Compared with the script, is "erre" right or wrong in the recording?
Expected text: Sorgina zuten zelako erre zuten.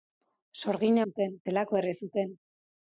right